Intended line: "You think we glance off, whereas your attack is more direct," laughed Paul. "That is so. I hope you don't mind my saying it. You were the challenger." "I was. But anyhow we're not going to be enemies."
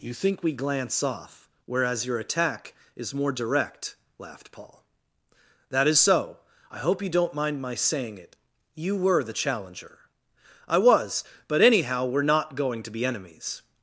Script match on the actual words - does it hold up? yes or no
yes